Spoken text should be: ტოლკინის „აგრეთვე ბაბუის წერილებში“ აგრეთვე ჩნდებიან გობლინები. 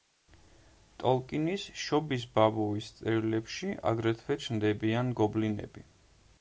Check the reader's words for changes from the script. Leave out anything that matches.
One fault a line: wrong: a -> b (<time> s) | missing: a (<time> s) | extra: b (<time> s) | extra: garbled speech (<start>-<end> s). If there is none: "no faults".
wrong: აგრეთვე -> შობის (1.8 s)